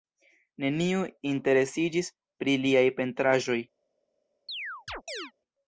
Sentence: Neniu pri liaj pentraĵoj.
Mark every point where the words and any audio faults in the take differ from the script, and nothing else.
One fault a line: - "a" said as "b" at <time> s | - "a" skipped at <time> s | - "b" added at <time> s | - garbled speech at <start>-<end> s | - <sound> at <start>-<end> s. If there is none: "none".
- "interesiĝis" added at 1.3 s
- chirp at 4.5-5.3 s